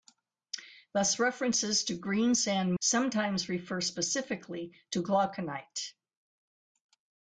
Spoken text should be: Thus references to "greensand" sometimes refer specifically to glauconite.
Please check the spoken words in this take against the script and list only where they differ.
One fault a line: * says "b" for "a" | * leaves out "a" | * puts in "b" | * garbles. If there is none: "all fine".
all fine